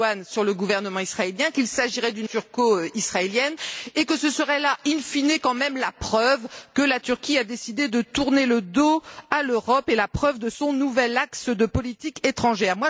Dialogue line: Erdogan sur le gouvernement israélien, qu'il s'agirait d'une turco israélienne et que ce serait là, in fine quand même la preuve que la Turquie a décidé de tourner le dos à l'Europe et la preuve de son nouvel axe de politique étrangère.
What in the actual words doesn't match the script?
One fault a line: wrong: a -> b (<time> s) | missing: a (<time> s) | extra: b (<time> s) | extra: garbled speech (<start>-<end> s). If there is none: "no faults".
no faults